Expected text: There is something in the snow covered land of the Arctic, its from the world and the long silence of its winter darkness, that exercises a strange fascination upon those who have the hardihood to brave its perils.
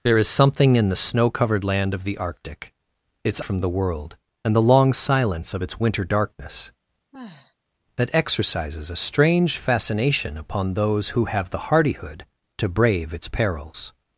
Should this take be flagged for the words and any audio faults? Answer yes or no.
yes